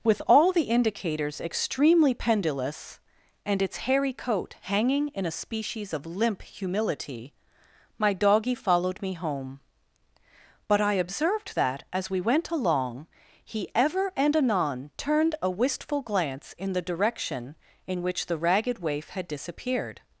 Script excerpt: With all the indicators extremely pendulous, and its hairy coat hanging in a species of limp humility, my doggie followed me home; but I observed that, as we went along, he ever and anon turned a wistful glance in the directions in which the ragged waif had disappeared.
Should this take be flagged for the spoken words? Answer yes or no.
yes